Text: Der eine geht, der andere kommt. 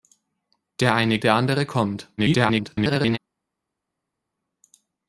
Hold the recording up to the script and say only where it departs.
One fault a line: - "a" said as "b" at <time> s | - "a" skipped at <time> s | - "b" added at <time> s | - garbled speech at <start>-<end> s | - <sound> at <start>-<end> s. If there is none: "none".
- "geht" skipped at 1.2 s
- garbled speech at 2.2-3.2 s